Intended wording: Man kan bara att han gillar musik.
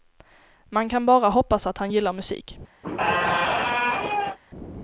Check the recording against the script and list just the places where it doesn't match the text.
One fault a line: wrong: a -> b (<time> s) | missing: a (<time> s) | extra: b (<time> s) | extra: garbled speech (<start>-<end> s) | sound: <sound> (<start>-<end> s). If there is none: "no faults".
extra: hoppas (1.3 s)
sound: squeak (2.8-4.4 s)